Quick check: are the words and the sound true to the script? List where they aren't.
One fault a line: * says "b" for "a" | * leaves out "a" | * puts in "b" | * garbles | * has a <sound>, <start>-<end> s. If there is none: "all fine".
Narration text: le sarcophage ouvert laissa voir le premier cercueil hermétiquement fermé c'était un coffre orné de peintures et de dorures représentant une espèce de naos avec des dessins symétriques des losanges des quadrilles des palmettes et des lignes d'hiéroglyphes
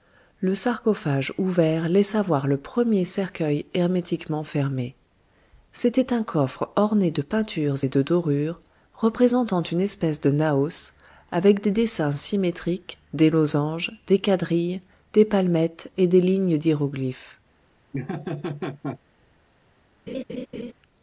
* has a laugh, 17.9-19.0 s
* has a laugh, 20.1-20.7 s